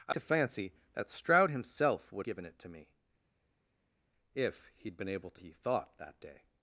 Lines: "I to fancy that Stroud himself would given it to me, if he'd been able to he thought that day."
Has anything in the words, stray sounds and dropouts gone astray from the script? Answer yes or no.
no